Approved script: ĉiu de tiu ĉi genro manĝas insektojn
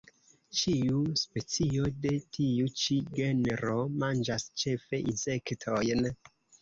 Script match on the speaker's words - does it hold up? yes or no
no